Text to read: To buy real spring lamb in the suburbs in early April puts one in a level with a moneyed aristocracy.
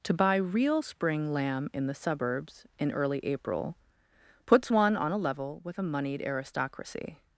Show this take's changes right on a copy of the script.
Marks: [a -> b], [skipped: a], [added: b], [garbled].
To buy real spring lamb in the suburbs in early April puts one [in -> on] a level with a moneyed aristocracy.